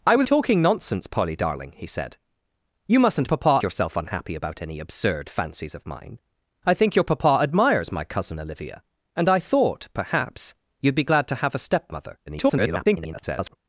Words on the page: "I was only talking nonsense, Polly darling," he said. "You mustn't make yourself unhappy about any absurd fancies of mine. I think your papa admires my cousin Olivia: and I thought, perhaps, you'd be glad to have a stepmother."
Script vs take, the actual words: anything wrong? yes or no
yes